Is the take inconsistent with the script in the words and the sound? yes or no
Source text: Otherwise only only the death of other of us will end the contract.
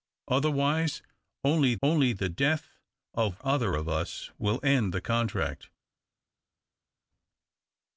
no